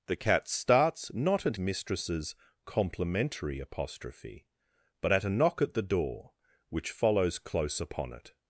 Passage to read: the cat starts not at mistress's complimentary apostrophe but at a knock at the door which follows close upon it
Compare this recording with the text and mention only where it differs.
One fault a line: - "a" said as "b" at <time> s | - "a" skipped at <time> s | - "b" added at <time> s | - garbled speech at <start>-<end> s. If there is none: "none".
none